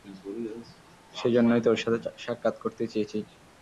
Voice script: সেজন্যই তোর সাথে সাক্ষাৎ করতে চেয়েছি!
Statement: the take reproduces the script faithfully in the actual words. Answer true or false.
true